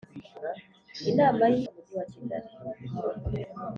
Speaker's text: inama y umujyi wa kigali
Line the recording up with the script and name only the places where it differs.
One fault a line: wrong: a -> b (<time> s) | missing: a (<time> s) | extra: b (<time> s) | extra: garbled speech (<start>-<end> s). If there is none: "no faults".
no faults